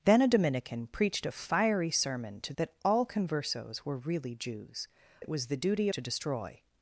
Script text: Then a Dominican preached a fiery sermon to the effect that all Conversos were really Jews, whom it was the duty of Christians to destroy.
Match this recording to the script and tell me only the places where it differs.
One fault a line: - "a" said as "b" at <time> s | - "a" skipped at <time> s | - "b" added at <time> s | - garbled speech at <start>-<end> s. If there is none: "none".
- "the effect" skipped at 2.5 s
- "whom" skipped at 4.9 s
- "of Christians" skipped at 5.9 s